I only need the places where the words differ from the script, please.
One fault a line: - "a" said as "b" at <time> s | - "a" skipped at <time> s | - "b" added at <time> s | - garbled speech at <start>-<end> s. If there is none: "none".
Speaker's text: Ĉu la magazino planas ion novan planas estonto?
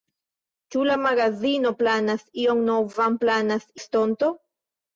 none